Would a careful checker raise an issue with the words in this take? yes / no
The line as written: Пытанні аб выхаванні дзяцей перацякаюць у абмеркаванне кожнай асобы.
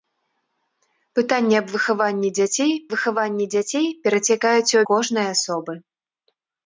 yes